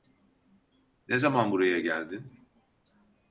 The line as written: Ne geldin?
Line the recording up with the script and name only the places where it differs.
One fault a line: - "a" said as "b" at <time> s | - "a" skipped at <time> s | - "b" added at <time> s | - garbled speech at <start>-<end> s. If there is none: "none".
- "zaman buraya" added at 1.2 s